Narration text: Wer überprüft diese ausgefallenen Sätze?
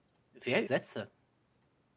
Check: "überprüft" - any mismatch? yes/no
yes